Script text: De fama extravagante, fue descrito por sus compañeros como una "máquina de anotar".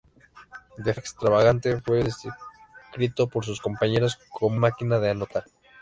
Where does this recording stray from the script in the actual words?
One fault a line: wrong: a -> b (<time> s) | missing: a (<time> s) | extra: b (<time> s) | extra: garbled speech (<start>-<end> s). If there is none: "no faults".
missing: fama (0.9 s)
missing: una (4.6 s)